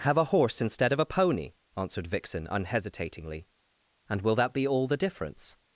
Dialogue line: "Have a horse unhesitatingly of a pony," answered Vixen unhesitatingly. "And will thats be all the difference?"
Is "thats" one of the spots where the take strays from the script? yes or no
yes